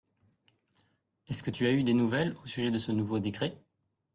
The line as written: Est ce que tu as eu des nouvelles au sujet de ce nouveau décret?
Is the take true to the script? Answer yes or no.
yes